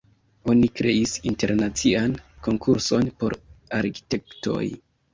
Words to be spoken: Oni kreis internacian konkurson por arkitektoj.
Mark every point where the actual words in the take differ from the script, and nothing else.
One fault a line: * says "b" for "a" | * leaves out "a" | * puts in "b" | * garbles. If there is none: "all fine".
all fine